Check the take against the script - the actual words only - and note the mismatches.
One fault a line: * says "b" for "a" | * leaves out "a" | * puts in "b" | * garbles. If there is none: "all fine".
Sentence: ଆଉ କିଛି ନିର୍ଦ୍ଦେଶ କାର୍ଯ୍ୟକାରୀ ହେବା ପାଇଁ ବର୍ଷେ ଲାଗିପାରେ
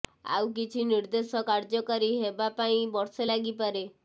all fine